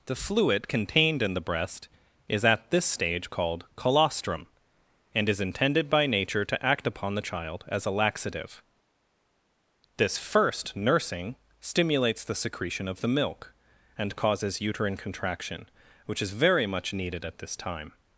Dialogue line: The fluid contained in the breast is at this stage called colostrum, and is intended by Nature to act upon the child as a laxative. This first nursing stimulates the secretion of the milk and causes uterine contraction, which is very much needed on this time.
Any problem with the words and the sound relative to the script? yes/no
yes